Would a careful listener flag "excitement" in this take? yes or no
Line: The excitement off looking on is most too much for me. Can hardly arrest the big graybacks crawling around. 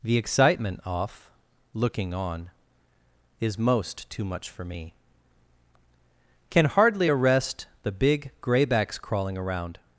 no